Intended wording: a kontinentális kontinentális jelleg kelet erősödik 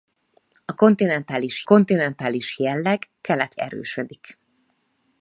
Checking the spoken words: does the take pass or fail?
pass